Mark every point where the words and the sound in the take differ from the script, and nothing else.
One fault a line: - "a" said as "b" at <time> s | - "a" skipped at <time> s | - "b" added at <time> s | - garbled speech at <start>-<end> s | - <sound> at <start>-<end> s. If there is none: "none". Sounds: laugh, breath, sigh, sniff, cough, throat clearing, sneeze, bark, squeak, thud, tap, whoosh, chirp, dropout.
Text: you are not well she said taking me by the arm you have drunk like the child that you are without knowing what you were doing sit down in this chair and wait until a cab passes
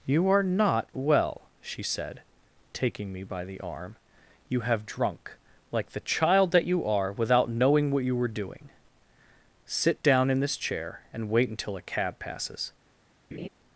- laugh at 13.3-13.5 s